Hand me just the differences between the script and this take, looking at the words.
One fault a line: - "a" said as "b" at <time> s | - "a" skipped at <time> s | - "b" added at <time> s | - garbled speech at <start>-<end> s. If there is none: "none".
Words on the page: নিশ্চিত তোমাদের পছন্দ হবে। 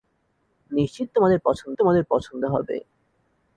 - "তোমাদের পছন্দ" added at 1.8 s